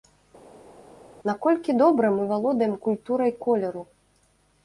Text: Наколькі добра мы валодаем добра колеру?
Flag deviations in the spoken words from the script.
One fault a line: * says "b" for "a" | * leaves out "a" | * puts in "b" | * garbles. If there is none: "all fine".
* says "культурай" for "добра"